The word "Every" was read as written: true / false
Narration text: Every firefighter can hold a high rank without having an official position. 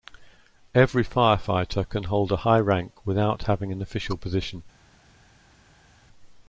true